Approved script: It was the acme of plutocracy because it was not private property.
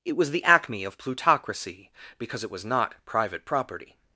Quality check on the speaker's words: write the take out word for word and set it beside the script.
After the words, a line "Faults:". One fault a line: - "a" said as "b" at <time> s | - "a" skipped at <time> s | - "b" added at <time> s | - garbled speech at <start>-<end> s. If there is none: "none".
It was the acme of plutocracy because it was not private property.
Faults:
none